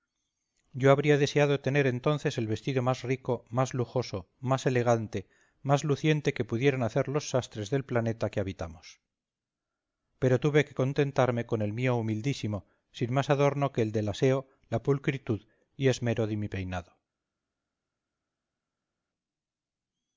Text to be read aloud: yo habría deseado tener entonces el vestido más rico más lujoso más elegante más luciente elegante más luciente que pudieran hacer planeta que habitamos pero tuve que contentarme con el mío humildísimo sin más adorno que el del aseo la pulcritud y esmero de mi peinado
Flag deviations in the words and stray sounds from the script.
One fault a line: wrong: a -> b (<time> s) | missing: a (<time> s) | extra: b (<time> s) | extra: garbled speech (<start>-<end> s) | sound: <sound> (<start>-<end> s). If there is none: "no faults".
wrong: elegante más luciente que pudieran hacer -> que pudieran hacer los sastres del (6.3 s)